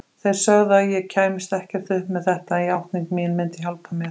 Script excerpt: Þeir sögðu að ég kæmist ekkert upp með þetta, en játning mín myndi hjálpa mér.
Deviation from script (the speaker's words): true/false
false